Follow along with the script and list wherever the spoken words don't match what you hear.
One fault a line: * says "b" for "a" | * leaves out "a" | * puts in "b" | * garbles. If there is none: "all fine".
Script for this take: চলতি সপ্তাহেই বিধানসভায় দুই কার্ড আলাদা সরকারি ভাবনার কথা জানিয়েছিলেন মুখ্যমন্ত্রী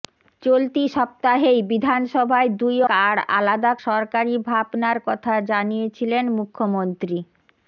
all fine